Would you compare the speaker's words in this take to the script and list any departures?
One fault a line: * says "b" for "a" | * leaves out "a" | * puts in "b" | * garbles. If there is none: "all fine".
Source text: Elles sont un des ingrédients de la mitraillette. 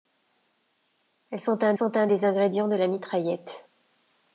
* puts in "sont un"